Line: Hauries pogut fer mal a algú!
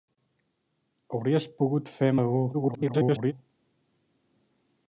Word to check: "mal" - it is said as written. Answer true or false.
false